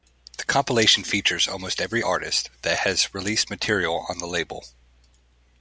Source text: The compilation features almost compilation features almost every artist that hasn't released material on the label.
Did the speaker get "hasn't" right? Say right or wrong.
wrong